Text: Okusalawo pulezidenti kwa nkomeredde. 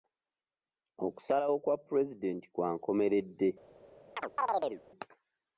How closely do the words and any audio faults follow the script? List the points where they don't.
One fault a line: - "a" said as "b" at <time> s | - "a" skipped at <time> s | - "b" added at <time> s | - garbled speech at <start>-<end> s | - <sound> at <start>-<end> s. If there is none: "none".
- "kwa" added at 1.6 s
- chirp at 4.2-4.8 s